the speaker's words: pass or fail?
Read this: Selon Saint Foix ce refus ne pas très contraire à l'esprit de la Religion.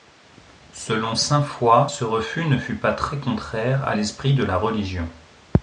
fail